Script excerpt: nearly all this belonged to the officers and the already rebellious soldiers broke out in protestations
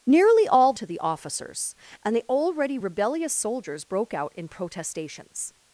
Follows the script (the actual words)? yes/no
no